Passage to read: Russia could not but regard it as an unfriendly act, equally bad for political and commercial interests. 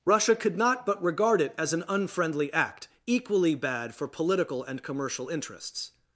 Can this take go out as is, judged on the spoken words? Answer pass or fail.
pass